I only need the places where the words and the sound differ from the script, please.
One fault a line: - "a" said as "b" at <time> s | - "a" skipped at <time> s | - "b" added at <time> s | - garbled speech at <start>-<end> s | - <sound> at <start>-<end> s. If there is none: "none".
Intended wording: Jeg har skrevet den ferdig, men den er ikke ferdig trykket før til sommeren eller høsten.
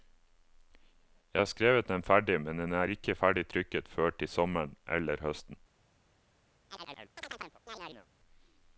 - chirp at 6.7-8.1 s